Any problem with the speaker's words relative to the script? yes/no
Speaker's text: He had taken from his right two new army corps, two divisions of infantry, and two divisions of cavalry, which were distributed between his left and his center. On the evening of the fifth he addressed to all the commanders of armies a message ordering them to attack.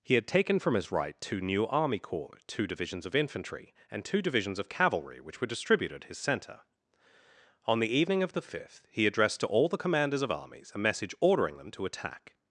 yes